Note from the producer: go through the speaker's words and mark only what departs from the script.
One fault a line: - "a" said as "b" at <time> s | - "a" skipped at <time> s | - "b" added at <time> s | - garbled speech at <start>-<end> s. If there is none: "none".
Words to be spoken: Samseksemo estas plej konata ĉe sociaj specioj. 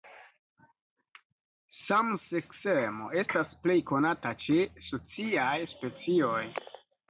none